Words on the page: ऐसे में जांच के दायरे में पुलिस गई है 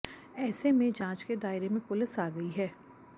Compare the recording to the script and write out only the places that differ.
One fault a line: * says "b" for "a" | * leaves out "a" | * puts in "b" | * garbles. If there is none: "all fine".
* puts in "आ"